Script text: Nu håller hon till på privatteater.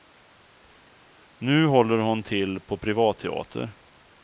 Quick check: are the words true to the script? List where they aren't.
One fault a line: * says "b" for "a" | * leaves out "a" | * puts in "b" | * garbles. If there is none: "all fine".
all fine